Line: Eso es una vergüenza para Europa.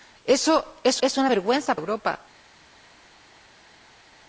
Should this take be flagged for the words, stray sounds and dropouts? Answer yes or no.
yes